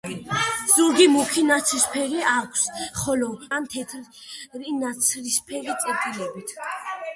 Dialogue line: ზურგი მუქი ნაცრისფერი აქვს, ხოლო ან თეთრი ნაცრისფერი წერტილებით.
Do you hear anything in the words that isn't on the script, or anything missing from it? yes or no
no